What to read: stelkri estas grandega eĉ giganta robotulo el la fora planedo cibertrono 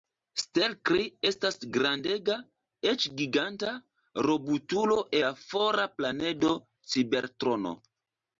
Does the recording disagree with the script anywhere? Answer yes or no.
yes